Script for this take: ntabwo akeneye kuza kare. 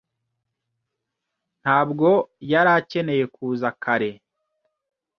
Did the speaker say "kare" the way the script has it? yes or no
yes